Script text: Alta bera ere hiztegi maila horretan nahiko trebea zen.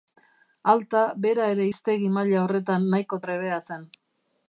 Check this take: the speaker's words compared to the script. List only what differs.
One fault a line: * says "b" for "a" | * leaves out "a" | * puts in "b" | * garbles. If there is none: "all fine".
all fine